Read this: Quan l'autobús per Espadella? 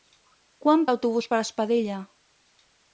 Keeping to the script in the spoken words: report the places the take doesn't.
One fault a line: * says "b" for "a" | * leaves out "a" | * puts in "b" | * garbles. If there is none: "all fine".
all fine